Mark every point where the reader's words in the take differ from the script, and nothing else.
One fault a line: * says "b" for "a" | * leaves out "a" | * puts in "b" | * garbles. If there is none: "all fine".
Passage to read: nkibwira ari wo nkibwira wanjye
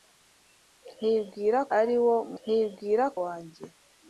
all fine